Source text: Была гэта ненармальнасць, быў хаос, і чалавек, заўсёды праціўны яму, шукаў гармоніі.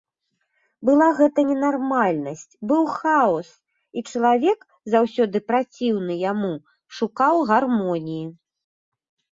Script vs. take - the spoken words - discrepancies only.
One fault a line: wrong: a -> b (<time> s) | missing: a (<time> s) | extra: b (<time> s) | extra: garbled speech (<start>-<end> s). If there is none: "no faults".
no faults